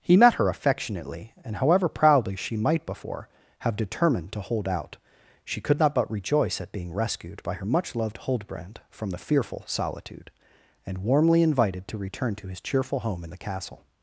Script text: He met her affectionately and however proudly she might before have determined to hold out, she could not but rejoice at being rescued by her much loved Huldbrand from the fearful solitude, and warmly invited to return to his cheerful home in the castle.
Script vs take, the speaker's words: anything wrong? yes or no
no